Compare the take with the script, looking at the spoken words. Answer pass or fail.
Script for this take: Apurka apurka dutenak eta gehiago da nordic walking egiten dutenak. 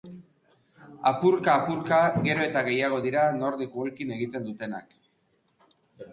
fail